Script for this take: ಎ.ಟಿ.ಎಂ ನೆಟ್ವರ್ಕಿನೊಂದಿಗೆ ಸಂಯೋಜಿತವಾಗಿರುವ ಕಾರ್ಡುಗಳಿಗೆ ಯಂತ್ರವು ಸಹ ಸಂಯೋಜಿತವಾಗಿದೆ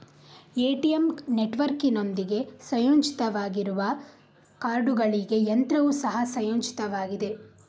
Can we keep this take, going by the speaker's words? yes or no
yes